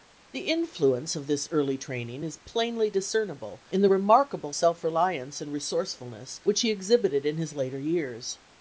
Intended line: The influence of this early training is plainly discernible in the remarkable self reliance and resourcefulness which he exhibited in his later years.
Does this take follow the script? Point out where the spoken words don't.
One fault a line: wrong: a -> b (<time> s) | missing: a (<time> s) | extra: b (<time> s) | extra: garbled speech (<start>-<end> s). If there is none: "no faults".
no faults